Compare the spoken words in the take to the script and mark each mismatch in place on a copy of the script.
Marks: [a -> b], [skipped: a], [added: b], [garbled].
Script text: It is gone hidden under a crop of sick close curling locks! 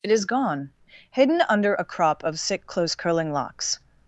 It is gone hidden under a crop of sick close curling locks!